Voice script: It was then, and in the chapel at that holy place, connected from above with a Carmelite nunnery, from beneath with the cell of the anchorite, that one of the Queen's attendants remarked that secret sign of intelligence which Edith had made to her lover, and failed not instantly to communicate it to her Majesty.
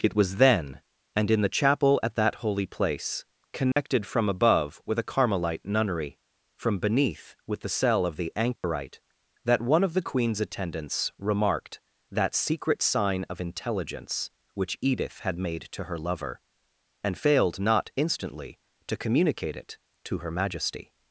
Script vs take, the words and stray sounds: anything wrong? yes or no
yes